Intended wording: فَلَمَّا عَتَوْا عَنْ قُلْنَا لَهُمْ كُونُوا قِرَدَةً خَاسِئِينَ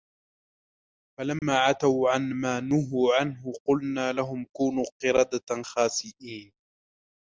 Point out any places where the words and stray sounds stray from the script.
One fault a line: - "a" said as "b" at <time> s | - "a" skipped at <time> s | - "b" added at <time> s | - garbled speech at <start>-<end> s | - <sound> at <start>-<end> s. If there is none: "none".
- dropout at 1.4-1.4 s
- "مَا نُهُوا عَنْهُ" added at 2.3 s